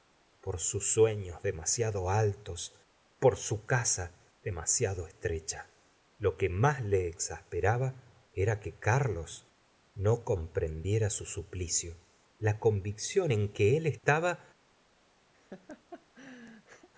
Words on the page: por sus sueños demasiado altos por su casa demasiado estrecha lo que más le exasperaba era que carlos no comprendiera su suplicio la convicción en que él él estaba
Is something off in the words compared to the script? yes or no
yes